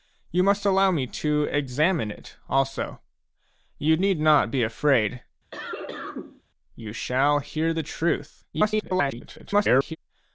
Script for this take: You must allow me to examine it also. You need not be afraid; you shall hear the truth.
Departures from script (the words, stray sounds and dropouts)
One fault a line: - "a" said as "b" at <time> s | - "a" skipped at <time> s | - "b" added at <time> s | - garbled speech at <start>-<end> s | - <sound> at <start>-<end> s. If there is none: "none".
- cough at 5.5-6.4 s
- garbled speech at 8.5-10.0 s